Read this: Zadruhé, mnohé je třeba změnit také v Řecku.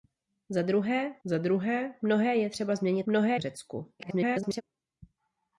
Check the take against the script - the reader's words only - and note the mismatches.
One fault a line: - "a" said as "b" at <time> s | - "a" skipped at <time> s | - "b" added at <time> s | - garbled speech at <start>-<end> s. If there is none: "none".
- "zadruhé" added at 1.2 s
- "také" said as "mnohé" at 3.0 s
- garbled speech at 4.0-4.6 s